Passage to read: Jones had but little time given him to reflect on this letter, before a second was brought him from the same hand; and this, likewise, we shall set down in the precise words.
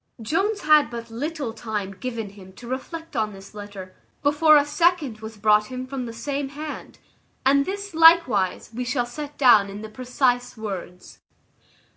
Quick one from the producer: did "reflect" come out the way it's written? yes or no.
yes